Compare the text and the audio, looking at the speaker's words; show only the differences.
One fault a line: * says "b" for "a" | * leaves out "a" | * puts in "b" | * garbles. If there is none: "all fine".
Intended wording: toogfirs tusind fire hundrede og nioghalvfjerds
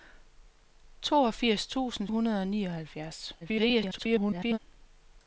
* leaves out "fire"
* garbles